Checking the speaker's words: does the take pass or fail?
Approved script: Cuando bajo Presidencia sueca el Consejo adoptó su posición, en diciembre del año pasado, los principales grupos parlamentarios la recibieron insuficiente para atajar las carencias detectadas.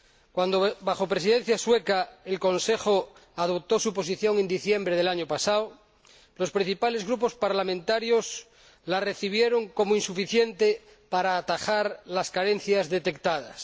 fail